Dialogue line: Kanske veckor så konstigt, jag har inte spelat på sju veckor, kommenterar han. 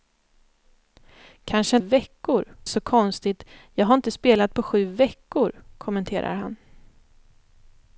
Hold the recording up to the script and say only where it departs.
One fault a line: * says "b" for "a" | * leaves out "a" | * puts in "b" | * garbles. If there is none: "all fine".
all fine